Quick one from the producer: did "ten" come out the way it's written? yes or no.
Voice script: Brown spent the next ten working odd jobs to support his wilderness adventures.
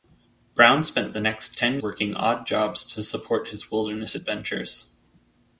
yes